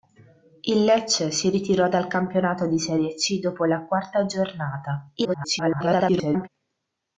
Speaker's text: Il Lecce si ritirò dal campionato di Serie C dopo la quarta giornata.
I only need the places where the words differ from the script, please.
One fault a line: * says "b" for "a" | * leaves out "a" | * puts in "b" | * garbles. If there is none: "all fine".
* garbles